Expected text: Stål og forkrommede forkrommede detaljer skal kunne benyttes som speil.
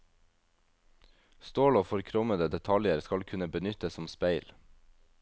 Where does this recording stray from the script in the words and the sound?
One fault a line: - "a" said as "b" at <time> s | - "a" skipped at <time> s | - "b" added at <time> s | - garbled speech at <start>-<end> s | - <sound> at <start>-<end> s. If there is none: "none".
- "forkrommede" skipped at 2.5 s